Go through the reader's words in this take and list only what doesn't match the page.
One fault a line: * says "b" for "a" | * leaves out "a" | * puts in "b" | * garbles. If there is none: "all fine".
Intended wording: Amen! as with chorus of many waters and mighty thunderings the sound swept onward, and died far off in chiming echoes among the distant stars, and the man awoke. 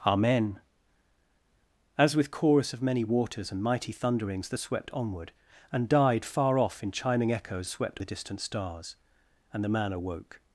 * leaves out "sound"
* says "swept" for "among"